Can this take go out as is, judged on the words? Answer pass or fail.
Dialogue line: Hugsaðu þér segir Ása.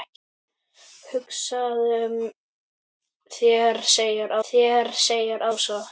fail